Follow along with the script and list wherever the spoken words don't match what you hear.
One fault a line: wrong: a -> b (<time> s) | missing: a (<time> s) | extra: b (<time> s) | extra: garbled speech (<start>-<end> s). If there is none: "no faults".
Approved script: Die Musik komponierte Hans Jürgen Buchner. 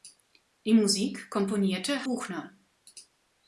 missing: Hans Jürgen (2.1 s)